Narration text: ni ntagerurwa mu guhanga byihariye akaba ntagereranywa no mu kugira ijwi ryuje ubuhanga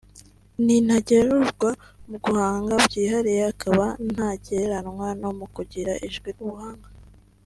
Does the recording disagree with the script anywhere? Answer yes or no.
yes